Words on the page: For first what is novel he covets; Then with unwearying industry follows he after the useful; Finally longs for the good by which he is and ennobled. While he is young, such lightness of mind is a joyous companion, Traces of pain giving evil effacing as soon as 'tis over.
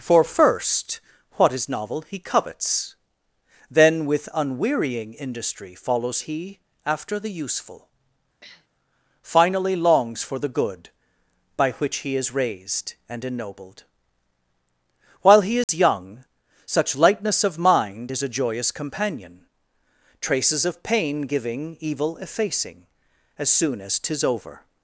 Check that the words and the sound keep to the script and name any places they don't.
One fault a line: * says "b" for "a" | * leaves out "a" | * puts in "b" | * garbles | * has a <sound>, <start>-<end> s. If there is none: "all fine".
* has a sniff, 8.4-8.7 s
* puts in "raised"
* has a dropout, 15.6-15.7 s